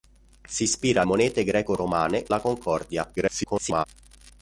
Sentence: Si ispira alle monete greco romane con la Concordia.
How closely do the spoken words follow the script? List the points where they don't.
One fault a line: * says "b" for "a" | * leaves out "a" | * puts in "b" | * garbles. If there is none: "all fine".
* leaves out "alle"
* leaves out "con"
* garbles